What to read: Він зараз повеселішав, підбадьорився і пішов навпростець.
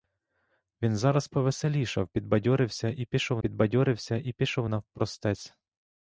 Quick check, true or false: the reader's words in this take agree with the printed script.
false